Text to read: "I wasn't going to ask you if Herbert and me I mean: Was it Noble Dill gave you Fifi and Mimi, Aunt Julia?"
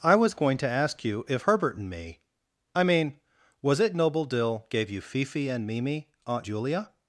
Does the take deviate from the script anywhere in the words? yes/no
yes